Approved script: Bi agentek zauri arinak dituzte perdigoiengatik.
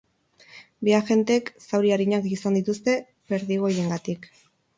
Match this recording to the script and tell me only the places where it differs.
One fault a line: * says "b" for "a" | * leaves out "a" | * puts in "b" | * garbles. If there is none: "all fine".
* puts in "izan"